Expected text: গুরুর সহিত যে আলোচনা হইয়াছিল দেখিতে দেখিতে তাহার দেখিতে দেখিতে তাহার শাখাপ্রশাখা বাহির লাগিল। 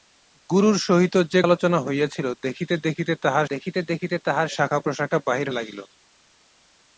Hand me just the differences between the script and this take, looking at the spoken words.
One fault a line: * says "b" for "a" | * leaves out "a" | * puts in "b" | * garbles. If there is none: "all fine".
all fine